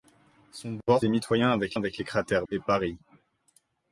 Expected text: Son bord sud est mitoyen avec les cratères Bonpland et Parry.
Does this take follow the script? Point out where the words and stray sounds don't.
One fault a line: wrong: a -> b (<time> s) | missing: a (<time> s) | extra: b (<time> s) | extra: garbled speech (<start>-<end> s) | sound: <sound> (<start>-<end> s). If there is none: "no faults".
missing: sud (1.1 s)
extra: avec (1.7 s)
missing: Bonpland (2.5 s)